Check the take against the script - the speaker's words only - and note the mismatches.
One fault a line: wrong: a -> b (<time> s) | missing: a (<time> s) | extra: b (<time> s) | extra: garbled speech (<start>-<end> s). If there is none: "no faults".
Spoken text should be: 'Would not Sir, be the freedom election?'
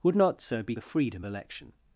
no faults